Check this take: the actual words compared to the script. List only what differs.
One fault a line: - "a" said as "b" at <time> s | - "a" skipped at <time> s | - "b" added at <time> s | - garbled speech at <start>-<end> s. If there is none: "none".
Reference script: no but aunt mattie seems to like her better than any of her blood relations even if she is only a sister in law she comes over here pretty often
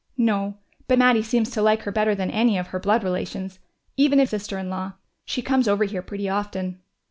- "aunt" skipped at 1.0 s
- "she is only" skipped at 4.3 s